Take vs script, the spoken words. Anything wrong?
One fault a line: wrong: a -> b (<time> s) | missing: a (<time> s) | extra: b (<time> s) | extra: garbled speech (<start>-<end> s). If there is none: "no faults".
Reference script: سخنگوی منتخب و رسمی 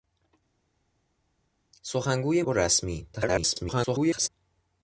missing: منتخب (2.4 s)
extra: garbled speech (3.1-4.3 s)